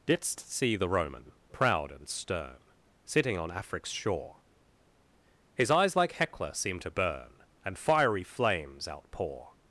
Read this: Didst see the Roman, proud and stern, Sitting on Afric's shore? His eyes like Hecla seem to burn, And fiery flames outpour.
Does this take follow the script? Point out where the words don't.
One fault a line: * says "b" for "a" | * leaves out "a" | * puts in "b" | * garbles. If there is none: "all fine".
all fine